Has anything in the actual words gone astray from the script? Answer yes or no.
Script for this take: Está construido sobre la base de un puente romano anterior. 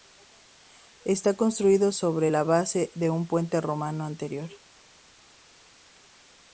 no